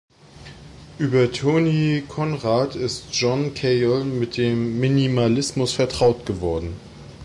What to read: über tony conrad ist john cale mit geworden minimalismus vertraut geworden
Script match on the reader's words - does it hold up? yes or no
no